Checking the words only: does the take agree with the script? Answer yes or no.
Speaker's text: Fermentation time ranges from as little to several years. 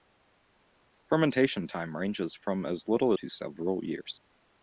yes